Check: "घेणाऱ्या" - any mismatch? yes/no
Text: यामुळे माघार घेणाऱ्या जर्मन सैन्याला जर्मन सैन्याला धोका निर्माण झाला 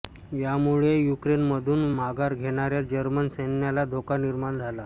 no